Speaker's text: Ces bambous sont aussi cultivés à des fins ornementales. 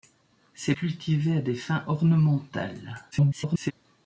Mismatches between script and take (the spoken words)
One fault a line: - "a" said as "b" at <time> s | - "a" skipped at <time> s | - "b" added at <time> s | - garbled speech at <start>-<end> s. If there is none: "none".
- "bambous sont aussi" skipped at 0.7 s
- garbled speech at 3.1-3.7 s